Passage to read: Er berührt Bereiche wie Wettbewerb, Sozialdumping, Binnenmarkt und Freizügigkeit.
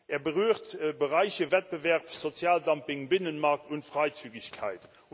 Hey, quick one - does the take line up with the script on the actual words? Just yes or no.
no